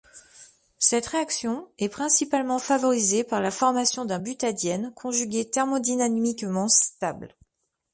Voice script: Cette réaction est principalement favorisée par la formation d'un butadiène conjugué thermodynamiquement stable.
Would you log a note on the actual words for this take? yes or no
no